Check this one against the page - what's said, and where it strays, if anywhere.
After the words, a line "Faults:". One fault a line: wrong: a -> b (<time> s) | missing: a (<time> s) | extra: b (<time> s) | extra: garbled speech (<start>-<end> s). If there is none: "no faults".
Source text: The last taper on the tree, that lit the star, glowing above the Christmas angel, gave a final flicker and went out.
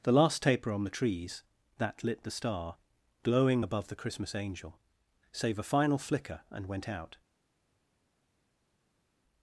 The last taper on the trees, that lit the star, glowing above the Christmas angel, save a final flicker and went out.
Faults:
wrong: tree -> trees (0.9 s)
wrong: gave -> save (5.3 s)